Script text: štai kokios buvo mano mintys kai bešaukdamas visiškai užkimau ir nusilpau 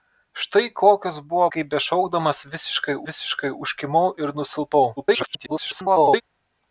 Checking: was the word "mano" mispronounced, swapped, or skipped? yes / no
yes